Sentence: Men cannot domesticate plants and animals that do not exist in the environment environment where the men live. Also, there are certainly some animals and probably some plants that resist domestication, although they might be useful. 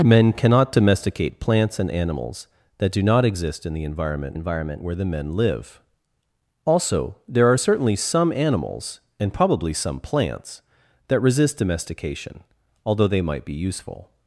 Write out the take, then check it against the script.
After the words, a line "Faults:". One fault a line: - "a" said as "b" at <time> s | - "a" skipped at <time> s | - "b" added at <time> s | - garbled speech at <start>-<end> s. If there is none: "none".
Men cannot domesticate plants and animals that do not exist in the environment environment where the men live. Also, there are certainly some animals and probably some plants that resist domestication, although they might be useful.
Faults:
none